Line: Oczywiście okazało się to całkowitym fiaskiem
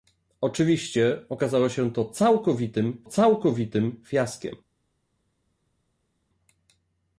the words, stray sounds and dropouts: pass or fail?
fail